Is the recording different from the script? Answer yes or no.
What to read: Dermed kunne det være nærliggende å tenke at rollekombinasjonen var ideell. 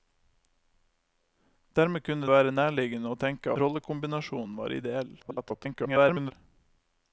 yes